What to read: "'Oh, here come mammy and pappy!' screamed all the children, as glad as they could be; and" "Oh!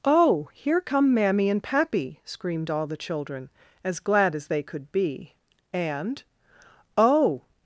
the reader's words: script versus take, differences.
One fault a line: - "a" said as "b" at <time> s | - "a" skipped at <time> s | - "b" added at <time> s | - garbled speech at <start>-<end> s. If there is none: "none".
none